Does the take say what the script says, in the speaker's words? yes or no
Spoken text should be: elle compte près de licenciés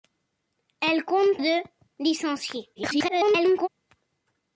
no